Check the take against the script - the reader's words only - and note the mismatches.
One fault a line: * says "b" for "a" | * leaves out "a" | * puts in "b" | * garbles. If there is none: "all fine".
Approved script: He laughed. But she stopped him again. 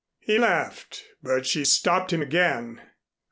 all fine